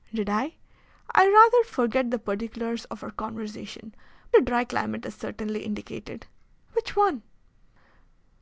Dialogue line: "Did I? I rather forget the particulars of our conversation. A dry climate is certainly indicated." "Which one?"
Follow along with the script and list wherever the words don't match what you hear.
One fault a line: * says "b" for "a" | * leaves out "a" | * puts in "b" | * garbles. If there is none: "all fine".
all fine